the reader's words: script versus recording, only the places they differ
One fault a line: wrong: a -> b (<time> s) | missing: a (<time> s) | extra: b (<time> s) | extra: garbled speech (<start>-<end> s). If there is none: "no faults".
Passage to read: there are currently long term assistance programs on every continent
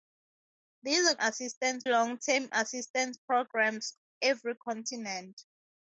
wrong: currently -> assistance (1.2 s)
missing: on (3.9 s)